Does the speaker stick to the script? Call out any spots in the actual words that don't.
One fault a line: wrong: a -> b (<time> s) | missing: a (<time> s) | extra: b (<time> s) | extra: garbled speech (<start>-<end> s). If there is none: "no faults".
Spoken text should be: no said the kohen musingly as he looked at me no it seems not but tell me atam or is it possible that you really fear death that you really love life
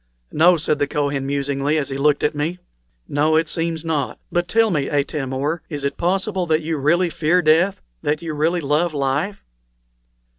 no faults